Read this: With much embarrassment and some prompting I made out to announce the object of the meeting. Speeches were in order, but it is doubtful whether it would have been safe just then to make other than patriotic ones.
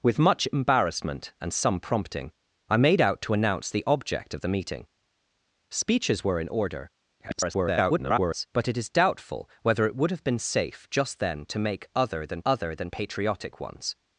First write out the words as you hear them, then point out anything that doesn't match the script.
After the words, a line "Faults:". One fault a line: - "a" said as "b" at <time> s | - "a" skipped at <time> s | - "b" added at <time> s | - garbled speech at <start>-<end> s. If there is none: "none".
With much embarrassment and some prompting I made out to announce the object of the meeting. Speeches were in order, [garbled] but it is doubtful whether it would have been safe just then to make other than other than patriotic ones.
Faults:
- garbled speech at 7.2-8.5 s
- "other than" added at 12.4 s